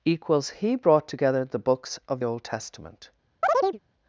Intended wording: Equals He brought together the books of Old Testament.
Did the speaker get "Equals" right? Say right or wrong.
right